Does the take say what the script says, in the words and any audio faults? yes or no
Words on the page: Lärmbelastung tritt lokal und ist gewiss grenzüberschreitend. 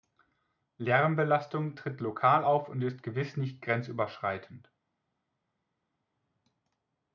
no